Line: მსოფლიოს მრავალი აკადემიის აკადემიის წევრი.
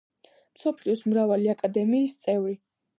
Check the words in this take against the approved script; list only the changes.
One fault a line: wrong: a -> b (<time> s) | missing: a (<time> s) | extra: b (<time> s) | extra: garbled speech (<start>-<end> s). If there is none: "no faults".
missing: აკადემიის (2.2 s)